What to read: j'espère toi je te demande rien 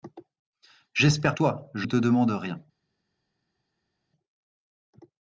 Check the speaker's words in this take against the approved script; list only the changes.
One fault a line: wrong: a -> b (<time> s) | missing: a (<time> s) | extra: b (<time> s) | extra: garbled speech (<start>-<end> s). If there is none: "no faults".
no faults